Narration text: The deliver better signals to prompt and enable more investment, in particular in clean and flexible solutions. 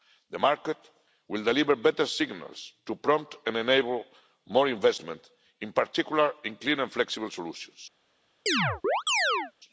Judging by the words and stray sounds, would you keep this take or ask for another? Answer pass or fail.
fail